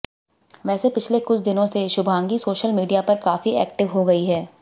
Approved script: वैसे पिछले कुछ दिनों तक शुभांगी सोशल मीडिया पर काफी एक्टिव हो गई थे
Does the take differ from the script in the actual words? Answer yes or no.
yes